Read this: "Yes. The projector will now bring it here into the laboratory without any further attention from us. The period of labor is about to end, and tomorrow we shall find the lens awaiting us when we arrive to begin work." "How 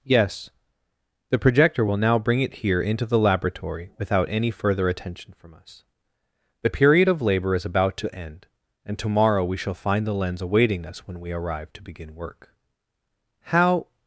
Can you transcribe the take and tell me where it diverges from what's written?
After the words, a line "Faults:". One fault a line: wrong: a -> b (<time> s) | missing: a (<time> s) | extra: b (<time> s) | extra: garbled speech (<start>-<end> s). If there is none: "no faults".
"Yes. The projector will now bring it here into the laboratory without any further attention from us. The period of labor is about to end, and tomorrow we shall find the lens awaiting us when we arrive to begin work." "How
Faults:
no faults